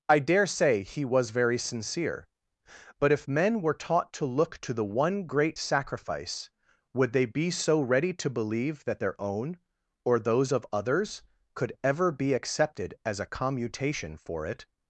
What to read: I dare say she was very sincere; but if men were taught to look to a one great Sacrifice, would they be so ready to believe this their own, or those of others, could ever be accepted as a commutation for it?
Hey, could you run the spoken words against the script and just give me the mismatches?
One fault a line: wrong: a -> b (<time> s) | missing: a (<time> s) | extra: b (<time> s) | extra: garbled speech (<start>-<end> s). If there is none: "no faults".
wrong: she -> he (0.8 s)
wrong: a -> the (4.7 s)
wrong: this -> that (8.9 s)